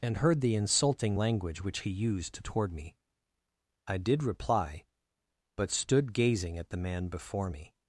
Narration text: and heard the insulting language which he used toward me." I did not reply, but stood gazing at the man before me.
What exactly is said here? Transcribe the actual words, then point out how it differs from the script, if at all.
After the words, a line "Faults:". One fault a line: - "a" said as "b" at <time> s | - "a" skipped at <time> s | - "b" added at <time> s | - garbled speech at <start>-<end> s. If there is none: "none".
and heard the insulting language which he used toward me." I did reply, but stood gazing at the man before me.
Faults:
- "not" skipped at 4.2 s